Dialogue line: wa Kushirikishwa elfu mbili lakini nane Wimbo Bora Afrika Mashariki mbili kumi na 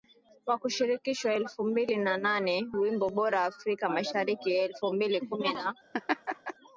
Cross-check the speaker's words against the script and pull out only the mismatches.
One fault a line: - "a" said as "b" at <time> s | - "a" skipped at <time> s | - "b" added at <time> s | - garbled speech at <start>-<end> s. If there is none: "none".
- "lakini" said as "na" at 2.0 s
- "elfu" added at 4.5 s